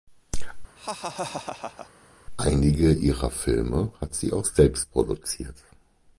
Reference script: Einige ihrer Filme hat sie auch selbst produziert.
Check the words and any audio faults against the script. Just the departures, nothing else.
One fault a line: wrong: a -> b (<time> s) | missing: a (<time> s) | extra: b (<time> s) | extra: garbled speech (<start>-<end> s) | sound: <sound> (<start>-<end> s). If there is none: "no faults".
sound: laugh (0.8-1.9 s)